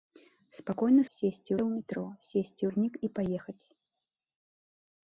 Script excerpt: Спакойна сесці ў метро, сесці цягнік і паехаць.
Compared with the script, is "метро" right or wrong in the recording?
right